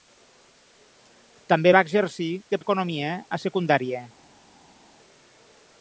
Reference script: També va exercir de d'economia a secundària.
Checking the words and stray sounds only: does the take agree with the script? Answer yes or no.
yes